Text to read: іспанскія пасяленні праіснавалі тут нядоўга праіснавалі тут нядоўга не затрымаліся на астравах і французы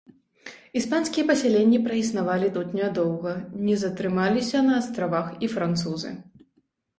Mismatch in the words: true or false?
true